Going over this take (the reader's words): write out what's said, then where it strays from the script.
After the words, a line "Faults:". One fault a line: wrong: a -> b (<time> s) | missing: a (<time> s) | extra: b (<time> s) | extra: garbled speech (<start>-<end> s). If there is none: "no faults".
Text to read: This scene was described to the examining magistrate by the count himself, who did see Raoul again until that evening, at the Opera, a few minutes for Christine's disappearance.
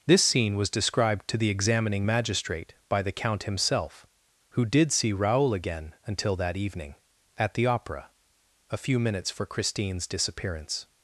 This scene was described to the examining magistrate by the count himself, who did see Raoul again until that evening, at the Opera, a few minutes for Christine's disappearance.
Faults:
no faults